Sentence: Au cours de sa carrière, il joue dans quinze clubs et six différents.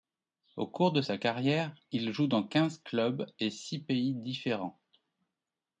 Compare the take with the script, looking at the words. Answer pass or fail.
fail